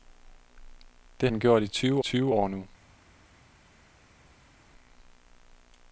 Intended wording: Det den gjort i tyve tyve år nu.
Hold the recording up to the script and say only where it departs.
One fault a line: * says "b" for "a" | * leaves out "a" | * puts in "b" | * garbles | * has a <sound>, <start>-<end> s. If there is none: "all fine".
all fine